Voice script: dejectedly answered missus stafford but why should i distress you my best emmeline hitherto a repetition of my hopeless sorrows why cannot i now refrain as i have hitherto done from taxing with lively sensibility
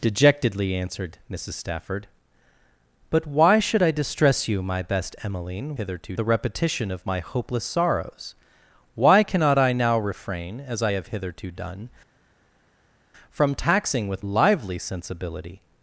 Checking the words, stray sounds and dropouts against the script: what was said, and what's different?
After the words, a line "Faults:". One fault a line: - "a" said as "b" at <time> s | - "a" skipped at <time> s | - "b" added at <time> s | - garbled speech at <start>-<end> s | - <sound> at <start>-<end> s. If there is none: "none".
dejectedly answered missus stafford but why should i distress you my best emmeline hitherto a repetition of my hopeless sorrows why cannot i now refrain as i have hitherto done from taxing with lively sensibility
Faults:
none